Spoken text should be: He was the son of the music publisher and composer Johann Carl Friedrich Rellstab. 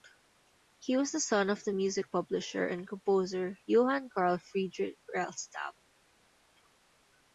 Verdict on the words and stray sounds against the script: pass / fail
pass